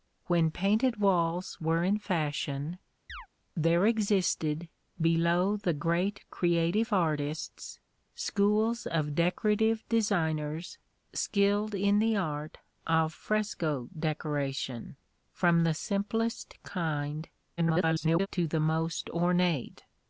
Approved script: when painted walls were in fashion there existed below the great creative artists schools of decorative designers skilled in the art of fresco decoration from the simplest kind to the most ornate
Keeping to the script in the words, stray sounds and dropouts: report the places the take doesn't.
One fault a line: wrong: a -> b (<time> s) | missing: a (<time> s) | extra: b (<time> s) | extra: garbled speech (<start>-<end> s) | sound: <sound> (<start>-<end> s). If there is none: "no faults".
sound: chirp (3.1-3.3 s)
extra: garbled speech (17.6-18.3 s)